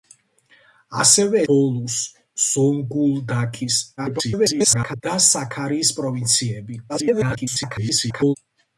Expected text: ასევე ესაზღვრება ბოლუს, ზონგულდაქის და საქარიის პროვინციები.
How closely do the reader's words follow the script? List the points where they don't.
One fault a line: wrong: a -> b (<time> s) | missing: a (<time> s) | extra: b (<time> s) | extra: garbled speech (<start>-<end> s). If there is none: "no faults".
missing: ესაზღვრება (1.4 s)
extra: garbled speech (4.0-5.0 s)
extra: garbled speech (6.9-8.4 s)